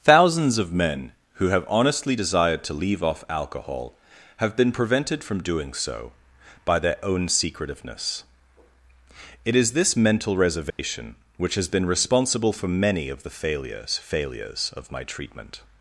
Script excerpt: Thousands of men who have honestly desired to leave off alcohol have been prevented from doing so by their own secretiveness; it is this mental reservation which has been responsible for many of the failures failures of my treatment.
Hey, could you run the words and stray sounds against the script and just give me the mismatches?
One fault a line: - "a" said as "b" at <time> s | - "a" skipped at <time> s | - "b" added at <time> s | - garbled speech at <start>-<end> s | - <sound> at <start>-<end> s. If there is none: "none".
- dropout at 10.7-10.8 s